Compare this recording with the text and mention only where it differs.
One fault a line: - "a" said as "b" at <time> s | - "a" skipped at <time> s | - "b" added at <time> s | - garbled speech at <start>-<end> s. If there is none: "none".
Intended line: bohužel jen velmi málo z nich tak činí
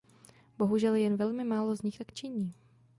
none